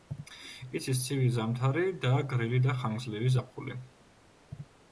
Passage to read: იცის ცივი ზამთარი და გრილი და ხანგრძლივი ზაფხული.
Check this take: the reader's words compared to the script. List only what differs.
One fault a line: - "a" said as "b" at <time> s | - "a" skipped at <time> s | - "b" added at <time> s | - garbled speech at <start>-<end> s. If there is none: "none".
none